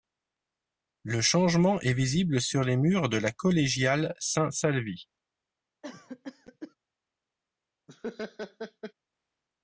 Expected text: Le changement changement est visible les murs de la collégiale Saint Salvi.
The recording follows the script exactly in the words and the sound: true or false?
false